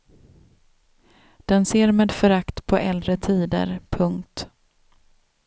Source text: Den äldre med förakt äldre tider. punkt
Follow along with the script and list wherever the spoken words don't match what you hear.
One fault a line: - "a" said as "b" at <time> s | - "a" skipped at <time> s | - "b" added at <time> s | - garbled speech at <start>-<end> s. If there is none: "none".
- "äldre" said as "ser" at 1.6 s
- "på" added at 2.7 s